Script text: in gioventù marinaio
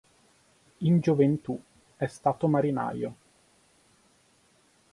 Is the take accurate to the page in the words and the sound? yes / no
no